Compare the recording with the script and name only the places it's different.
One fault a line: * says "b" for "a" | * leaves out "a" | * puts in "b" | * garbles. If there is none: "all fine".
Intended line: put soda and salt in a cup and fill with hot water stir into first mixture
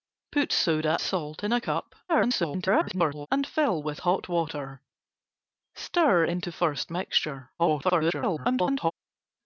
* leaves out "and"
* garbles
* garbles